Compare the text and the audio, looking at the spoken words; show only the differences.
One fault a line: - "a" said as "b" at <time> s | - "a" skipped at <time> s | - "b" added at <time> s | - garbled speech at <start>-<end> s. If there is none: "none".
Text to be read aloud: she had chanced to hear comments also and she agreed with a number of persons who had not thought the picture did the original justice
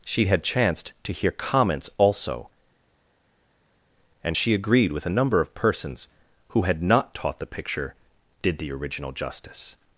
- "thought" said as "taught" at 7.1 s